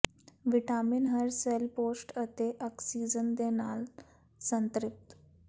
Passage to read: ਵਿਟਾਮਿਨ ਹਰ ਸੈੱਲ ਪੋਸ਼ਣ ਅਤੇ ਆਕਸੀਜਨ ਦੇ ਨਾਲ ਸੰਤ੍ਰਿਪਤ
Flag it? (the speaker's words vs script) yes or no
no